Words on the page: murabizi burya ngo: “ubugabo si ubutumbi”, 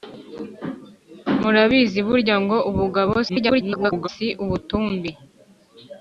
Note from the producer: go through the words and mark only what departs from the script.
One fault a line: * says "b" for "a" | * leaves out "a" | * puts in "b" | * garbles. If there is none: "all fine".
* garbles